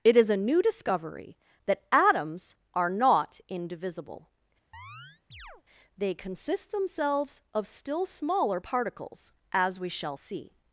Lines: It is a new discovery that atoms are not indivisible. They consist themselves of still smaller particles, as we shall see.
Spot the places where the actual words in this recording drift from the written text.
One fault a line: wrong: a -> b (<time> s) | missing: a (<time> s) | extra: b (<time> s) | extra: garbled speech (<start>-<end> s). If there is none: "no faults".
no faults